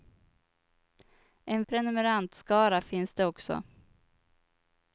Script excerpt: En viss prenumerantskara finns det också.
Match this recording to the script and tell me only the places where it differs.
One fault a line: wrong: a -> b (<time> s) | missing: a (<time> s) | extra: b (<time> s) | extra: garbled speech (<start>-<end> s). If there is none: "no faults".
missing: viss (1.6 s)